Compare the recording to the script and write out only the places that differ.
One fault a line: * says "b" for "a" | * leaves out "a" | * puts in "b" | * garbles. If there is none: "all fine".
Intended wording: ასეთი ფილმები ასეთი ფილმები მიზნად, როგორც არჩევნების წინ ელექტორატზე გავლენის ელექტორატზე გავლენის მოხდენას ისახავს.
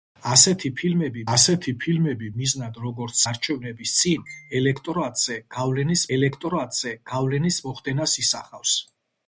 all fine